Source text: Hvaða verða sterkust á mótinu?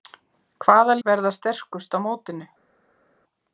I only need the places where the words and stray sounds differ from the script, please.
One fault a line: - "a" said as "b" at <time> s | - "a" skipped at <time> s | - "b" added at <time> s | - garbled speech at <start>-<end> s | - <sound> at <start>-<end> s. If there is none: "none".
none